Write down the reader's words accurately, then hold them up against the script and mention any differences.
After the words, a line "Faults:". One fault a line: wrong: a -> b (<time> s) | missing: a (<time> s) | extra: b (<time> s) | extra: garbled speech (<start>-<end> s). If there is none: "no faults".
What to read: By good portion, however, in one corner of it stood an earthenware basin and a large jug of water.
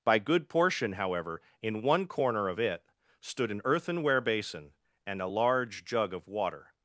By good portion, however, in one corner of it stood an earthenware basin and a large jug of water.
Faults:
no faults